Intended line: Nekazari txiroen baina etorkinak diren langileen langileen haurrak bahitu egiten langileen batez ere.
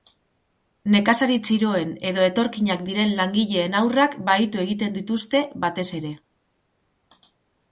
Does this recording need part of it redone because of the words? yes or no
yes